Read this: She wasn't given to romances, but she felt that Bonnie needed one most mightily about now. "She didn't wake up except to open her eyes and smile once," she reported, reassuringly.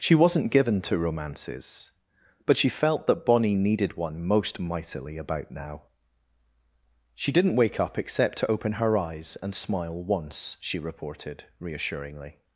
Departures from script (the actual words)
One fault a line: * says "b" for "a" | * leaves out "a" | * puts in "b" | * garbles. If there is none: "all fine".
all fine